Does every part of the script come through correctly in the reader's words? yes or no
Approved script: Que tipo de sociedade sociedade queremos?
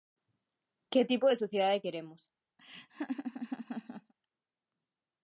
no